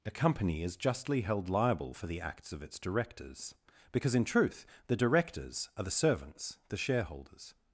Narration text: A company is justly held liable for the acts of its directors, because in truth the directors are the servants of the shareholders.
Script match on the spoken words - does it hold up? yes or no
no